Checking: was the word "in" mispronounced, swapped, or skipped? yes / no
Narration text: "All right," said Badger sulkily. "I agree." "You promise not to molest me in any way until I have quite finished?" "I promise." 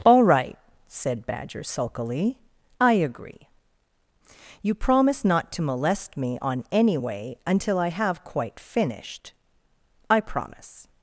yes